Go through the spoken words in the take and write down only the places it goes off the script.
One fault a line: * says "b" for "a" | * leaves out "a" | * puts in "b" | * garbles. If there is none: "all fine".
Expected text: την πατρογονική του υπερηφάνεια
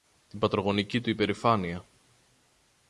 all fine